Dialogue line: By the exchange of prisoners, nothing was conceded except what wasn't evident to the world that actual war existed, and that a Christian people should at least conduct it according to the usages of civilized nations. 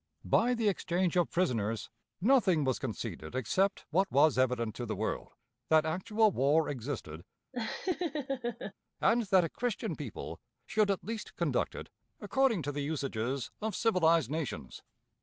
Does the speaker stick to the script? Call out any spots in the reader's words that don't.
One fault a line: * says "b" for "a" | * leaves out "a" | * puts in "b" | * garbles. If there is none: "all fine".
* says "was" for "wasn't"